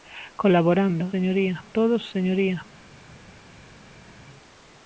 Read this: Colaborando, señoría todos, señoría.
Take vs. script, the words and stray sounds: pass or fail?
pass